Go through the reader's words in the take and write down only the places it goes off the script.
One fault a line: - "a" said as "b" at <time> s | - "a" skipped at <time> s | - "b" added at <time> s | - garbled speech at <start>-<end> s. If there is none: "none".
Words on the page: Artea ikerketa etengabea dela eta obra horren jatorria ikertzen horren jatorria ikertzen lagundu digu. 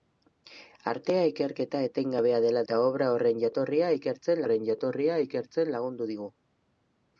none